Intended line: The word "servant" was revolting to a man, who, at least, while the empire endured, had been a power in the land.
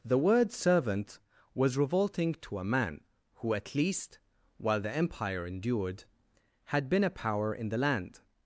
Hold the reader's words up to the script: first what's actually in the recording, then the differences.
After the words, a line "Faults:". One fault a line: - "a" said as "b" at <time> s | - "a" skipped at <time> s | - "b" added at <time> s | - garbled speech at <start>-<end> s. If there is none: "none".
The word "servant" was revolting to a man, who, at least, while the empire endured, had been a power in the land.
Faults:
none